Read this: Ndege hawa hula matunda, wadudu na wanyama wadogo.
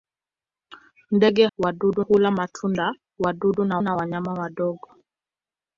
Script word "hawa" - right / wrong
wrong